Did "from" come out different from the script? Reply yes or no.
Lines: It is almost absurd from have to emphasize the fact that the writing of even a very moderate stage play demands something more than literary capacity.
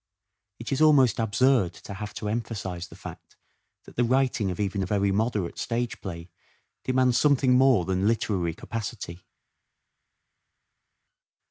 yes